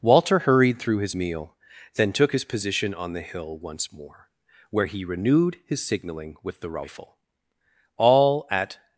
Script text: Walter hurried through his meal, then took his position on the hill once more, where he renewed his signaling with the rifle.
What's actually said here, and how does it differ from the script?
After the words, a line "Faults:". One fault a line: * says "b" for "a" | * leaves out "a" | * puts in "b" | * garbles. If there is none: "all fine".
Walter hurried through his meal, then took his position on the hill once more, where he renewed his signaling with the rifle. All at
Faults:
* puts in "All at"